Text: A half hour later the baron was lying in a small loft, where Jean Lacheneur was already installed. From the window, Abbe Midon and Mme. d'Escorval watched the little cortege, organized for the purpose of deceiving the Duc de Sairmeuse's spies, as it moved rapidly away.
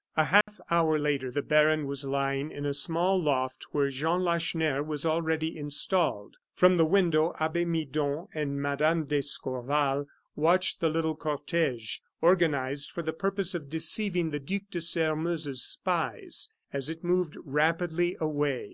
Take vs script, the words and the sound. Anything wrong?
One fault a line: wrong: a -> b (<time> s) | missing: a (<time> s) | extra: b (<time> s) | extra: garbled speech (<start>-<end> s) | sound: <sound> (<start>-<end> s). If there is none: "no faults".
sound: dropout (0.4-0.5 s)